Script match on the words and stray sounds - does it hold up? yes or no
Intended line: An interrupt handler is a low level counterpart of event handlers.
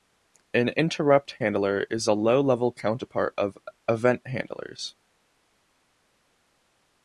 yes